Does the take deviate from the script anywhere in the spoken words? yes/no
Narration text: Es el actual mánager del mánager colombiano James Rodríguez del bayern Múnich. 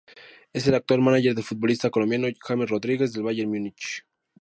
yes